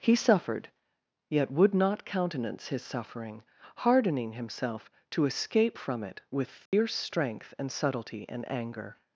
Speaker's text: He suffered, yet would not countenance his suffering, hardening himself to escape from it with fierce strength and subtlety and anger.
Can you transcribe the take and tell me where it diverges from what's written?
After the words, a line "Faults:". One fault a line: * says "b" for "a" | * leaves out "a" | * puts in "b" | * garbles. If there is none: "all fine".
He suffered, yet would not countenance his suffering, hardening himself to escape from it with fierce strength and subtlety and anger.
Faults:
all fine